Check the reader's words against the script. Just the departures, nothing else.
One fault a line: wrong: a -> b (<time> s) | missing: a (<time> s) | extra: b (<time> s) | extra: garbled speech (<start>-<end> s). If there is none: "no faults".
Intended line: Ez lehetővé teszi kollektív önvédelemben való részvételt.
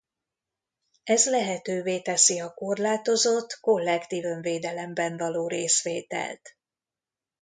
extra: a korlátozott (2.4 s)